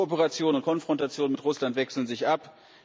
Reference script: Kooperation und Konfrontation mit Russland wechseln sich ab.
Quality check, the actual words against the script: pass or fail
pass